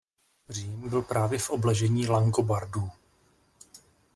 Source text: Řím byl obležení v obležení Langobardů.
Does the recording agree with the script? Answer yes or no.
no